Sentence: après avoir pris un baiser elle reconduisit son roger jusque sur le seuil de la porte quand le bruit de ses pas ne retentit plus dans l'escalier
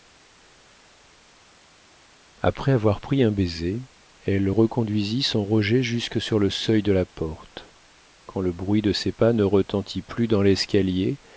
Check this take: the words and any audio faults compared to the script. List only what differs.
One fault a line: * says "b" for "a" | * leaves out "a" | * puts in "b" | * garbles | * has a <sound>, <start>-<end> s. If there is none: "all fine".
all fine